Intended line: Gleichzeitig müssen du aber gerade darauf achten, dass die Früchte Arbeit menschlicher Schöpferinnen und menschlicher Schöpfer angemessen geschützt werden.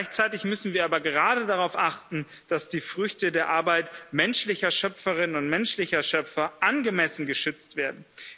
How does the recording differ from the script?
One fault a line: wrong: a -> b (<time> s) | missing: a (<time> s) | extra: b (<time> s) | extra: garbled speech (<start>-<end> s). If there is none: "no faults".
wrong: du -> wir (0.7 s)
extra: der (3.3 s)